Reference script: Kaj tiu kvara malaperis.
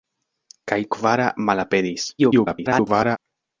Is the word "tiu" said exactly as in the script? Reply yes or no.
no